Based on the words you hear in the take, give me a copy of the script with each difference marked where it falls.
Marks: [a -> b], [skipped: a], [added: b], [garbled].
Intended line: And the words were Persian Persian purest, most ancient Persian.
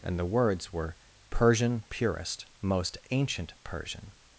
And the words were Persian [skipped: Persian] purest, most ancient Persian.